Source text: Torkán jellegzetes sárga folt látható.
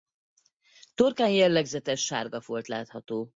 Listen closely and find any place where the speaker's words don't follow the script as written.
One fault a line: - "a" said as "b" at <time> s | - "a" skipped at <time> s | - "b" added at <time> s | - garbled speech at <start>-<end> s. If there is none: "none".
none